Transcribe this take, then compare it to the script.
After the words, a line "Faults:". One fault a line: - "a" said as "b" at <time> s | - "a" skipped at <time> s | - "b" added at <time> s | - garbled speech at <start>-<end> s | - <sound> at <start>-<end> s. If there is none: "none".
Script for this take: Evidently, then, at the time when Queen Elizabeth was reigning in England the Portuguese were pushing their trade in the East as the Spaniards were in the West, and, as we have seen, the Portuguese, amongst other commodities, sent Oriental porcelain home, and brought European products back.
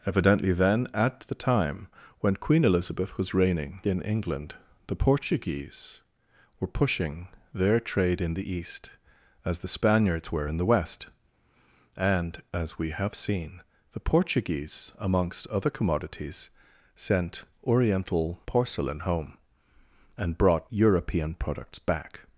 Evidently, then, at the time when Queen Elizabeth was reigning in England the Portuguese were pushing their trade in the East as the Spaniards were in the West, and, as we have seen, the Portuguese, amongst other commodities, sent Oriental porcelain home, and brought European products back.
Faults:
none